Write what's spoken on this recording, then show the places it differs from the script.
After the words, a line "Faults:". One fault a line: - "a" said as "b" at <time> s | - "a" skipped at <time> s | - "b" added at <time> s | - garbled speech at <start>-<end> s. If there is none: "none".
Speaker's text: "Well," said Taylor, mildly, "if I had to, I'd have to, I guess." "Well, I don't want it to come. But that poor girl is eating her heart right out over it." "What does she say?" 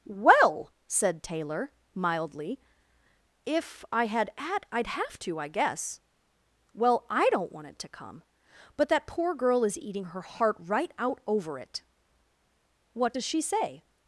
"Well," said Taylor, mildly, "if I had at, I'd have to, I guess." "Well, I don't want it to come. But that poor girl is eating her heart right out over it." "What does she say?"
Faults:
- "to" said as "at" at 4.4 s